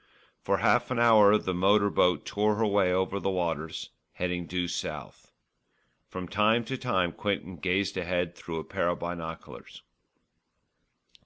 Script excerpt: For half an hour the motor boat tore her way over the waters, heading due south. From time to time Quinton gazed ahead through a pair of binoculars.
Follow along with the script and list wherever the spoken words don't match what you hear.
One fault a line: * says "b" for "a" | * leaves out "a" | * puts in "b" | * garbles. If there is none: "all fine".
all fine